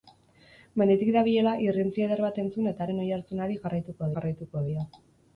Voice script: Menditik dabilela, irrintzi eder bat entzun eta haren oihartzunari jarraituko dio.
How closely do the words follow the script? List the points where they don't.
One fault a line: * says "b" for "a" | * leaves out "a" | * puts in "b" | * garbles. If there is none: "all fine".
* puts in "jarraituko"